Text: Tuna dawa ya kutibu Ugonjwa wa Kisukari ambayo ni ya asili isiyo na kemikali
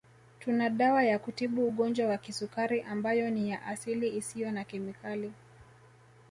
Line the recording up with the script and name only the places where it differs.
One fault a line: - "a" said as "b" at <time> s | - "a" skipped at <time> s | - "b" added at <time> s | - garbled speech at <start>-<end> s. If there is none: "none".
none